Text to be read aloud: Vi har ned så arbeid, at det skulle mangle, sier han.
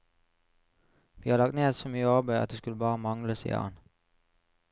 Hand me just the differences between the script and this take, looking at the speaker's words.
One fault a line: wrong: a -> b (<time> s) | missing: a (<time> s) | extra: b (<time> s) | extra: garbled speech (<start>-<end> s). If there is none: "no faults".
extra: lagt (1.4 s)
extra: mye (1.9 s)
extra: bare (2.8 s)